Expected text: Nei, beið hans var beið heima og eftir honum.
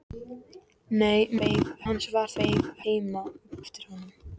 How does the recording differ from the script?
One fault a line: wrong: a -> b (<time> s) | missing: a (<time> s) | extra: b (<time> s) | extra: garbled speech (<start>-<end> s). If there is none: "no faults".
no faults